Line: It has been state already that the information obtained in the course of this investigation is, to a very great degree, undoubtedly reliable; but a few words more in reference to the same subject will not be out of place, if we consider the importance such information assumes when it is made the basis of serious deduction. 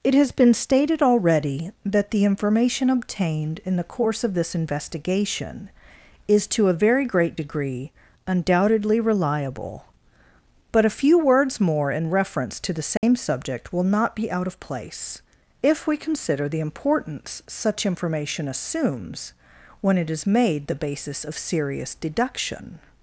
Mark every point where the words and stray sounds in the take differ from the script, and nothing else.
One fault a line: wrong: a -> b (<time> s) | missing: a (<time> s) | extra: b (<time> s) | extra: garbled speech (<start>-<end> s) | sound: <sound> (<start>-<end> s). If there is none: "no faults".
wrong: state -> stated (0.6 s)
sound: dropout (13.0-13.0 s)